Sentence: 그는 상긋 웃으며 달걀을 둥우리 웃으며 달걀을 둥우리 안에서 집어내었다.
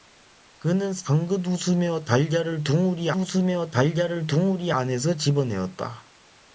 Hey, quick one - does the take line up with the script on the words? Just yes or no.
yes